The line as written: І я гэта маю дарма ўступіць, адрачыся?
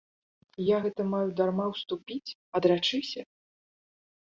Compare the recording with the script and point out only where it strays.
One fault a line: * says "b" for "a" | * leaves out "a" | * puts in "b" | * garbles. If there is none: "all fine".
all fine